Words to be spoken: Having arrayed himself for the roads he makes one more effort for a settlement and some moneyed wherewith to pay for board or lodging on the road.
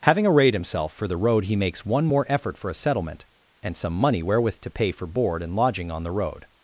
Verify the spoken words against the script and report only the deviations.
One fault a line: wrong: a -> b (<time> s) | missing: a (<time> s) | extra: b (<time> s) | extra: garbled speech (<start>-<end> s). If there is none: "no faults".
wrong: roads -> road (1.2 s)
wrong: moneyed -> money (3.9 s)
wrong: or -> and (5.4 s)